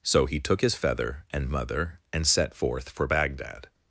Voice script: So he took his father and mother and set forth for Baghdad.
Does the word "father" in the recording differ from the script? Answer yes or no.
yes